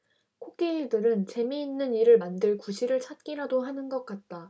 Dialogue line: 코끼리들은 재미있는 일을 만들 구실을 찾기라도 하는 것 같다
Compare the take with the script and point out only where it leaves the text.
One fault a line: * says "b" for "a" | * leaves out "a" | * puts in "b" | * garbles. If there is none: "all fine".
all fine